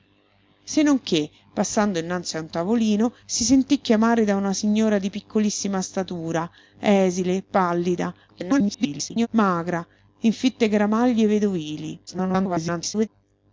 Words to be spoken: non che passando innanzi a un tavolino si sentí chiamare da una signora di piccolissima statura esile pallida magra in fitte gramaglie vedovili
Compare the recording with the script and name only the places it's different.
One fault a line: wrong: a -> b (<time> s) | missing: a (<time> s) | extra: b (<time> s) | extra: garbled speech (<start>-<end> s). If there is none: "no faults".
extra: garbled speech (8.3-9.3 s)
extra: garbled speech (12.1-13.1 s)